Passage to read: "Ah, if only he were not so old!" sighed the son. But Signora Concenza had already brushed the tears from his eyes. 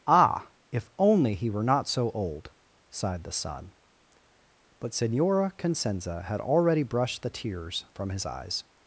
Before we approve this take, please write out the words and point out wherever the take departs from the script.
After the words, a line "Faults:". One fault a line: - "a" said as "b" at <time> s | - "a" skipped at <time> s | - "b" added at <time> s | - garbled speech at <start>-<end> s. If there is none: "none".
"Ah, if only he were not so old!" sighed the son. But Signora Concenza had already brushed the tears from his eyes.
Faults:
none